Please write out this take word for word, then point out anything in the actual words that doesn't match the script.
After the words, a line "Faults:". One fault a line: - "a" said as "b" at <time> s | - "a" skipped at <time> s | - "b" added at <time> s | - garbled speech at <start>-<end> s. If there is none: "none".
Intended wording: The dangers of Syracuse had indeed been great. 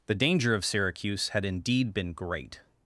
The danger of Syracuse had indeed been great.
Faults:
- "dangers" said as "danger" at 0.1 s